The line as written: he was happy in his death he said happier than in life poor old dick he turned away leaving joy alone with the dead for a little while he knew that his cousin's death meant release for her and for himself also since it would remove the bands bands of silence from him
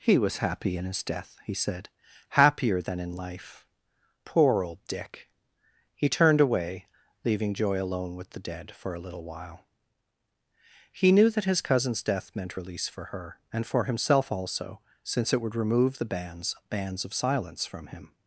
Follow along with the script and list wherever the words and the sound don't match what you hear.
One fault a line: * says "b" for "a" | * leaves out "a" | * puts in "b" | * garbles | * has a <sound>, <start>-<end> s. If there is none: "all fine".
all fine